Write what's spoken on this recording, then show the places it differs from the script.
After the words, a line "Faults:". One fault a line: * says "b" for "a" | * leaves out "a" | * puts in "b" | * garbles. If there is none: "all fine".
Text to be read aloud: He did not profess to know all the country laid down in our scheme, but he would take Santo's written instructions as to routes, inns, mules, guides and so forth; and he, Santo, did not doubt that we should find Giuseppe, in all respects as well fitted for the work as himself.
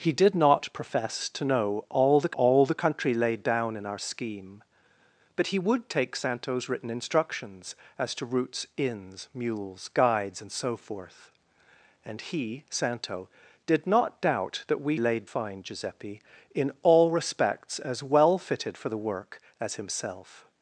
He did not profess to know all the all the country laid down in our scheme, but he would take Santo's written instructions as to routes, inns, mules, guides and so forth; and he, Santo, did not doubt that we laid find Giuseppe, in all respects as well fitted for the work as himself.
Faults:
* puts in "all the"
* says "laid" for "should"